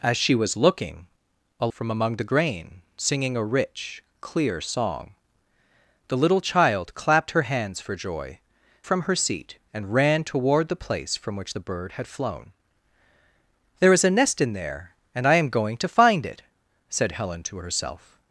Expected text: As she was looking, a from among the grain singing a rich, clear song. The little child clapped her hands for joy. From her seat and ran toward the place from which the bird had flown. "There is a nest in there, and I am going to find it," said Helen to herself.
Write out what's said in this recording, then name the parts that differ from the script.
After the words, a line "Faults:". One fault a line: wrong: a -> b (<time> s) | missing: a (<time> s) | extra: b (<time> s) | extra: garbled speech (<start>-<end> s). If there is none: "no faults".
As she was looking, a from among the grain singing a rich, clear song. The little child clapped her hands for joy. From her seat and ran toward the place from which the bird had flown. "There is a nest in there, and I am going to find it," said Helen to herself.
Faults:
no faults